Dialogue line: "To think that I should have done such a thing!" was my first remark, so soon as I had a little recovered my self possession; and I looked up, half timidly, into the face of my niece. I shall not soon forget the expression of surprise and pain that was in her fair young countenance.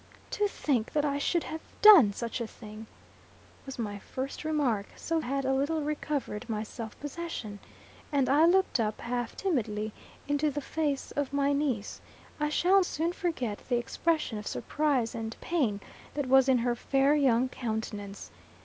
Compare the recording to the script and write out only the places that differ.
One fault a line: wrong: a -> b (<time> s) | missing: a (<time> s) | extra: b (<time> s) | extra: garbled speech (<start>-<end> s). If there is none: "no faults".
missing: soon as I (5.2 s)
missing: not (12.8 s)